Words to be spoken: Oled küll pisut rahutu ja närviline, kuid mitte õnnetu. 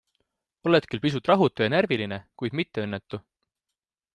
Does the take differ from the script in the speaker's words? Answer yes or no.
no